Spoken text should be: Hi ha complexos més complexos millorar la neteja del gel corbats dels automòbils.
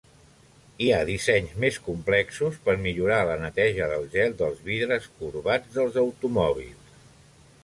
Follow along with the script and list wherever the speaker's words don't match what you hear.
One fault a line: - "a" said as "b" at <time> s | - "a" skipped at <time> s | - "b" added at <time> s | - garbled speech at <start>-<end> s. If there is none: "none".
- "complexos" said as "dissenys" at 1.1 s
- "per" added at 2.7 s
- "dels vidres" added at 4.4 s